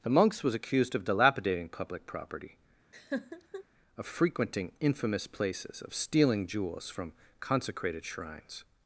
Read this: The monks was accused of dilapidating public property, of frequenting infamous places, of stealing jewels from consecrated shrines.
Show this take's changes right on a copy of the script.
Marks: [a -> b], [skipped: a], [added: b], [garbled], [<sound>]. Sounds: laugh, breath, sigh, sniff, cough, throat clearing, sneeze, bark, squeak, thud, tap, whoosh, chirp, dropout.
The monks was accused of dilapidating public property, [laugh] of frequenting infamous places, of stealing jewels from consecrated shrines.